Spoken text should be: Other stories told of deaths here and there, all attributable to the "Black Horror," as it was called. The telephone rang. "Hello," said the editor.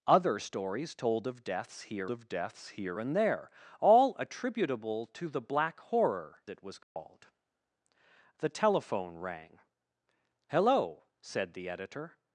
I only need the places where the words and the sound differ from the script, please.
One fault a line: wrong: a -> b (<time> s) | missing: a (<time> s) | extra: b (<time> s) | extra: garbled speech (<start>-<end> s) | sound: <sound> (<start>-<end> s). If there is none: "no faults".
extra: of deaths here (2.1 s)
missing: as (6.4 s)
sound: dropout (6.8-7.0 s)